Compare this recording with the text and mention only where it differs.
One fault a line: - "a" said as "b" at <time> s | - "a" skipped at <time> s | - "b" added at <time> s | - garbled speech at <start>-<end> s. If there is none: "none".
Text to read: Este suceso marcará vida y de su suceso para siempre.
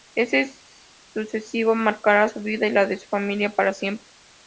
- "su" added at 2.2 s
- "la" added at 2.7 s
- "suceso" said as "familia" at 3.1 s